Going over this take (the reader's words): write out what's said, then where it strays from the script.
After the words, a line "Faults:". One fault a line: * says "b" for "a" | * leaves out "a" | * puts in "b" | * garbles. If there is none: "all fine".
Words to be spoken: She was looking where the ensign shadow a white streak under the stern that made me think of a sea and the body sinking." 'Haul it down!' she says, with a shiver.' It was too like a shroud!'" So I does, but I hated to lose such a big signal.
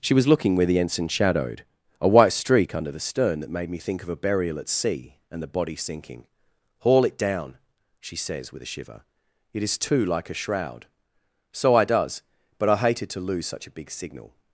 She was looking where the ensign shadowed a white streak under the stern that made me think of a burial at sea and the body sinking." 'Haul it down!' she says, with a shiver.' It is too like a shroud!'" So I does, but I hated to lose such a big signal.
Faults:
* says "shadowed" for "shadow"
* puts in "burial at"
* says "is" for "was"